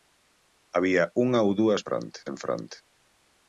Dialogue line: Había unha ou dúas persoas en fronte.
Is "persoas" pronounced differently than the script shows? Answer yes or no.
yes